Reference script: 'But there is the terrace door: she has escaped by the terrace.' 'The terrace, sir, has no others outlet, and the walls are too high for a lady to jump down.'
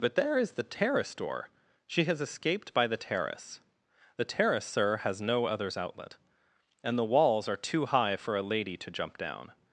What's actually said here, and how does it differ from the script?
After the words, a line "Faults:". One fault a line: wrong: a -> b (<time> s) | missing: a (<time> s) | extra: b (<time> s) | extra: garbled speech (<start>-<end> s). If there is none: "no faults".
'But there is the terrace door: she has escaped by the terrace.' 'The terrace, sir, has no others outlet, and the walls are too high for a lady to jump down.'
Faults:
no faults